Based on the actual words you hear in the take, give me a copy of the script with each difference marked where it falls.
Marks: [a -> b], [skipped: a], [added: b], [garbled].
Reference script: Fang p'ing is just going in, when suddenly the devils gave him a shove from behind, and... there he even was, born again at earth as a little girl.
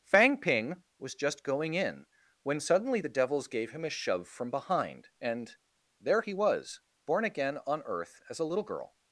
Fang p'ing [is -> was] just going in, when suddenly the devils gave him a shove from behind, and... there he [skipped: even] was, born again [at -> on] earth as a little girl.